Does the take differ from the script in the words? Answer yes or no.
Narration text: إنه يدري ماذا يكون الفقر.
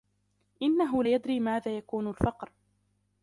no